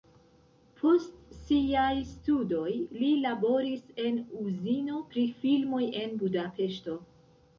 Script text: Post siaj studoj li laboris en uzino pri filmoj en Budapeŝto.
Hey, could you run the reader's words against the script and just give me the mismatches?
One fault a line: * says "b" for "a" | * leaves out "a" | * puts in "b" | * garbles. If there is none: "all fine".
all fine